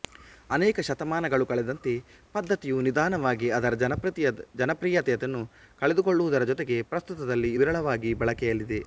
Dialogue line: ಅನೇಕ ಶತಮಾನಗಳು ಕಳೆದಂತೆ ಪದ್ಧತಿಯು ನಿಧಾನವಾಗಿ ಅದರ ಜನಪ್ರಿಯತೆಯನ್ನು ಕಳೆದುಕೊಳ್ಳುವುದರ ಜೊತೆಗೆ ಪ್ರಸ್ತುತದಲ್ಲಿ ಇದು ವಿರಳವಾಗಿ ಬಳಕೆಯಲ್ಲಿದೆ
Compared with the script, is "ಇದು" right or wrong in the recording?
wrong